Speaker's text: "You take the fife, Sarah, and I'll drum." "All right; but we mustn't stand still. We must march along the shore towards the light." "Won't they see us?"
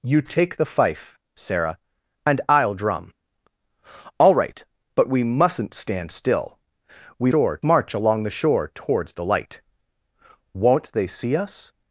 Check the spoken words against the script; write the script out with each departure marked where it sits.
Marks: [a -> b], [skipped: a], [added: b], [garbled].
"You take the fife, Sarah, and I'll drum." "All right; but we mustn't stand still. We [must -> shore] march along the shore towards the light." "Won't they see us?"